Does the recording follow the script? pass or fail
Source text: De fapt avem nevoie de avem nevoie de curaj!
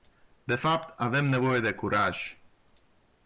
fail